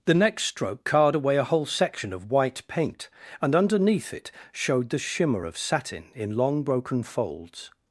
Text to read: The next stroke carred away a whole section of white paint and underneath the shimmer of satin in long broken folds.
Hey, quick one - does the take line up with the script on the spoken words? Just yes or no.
no